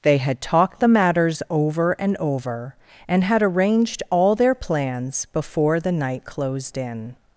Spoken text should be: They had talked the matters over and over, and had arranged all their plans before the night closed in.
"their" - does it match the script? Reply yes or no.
yes